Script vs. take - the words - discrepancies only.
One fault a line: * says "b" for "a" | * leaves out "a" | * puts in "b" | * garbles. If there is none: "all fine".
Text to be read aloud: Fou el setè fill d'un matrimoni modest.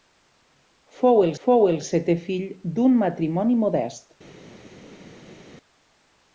* puts in "fou el"